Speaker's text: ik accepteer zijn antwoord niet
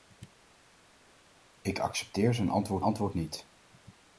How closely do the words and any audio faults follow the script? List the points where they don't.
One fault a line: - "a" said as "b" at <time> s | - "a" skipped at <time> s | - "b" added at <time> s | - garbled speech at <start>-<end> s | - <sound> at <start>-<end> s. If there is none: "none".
- "antwoord" added at 2.8 s